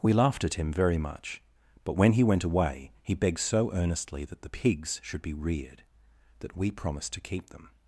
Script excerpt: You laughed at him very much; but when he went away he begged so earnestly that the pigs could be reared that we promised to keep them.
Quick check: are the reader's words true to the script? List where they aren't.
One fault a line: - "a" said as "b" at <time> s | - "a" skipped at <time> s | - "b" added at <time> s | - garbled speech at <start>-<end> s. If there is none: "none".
- "You" said as "We" at 0.0 s
- "could" said as "should" at 5.0 s